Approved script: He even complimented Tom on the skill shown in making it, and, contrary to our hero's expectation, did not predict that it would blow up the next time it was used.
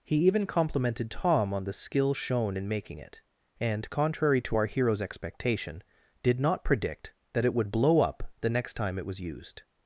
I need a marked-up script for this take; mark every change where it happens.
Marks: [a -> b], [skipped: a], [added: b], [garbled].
He even complimented Tom on the skill shown in making it, and, contrary to our hero's expectation, did not predict that it would blow up the next time it was used.